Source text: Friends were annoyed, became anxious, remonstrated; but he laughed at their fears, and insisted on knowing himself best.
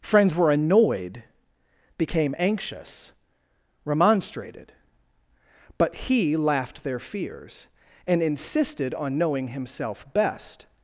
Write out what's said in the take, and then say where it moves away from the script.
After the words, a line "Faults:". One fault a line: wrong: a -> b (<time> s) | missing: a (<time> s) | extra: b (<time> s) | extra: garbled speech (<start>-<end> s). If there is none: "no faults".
Friends were annoyed, became anxious, remonstrated; but he laughed their fears, and insisted on knowing himself best.
Faults:
missing: at (6.8 s)